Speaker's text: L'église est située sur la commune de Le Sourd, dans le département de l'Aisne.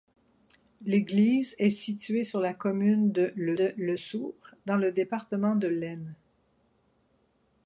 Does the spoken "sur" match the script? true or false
true